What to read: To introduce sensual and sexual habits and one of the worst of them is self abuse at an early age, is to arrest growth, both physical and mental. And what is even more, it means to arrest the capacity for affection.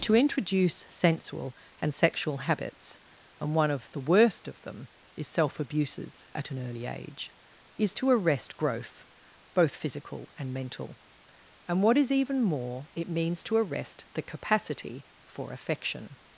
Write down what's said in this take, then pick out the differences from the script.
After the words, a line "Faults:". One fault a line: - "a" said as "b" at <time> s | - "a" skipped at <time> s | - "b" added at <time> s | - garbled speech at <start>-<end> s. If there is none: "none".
To introduce sensual and sexual habits and one of the worst of them is self abuses at an early age, is to arrest growth, both physical and mental. And what is even more, it means to arrest the capacity for affection.
Faults:
- "abuse" said as "abuses" at 5.6 s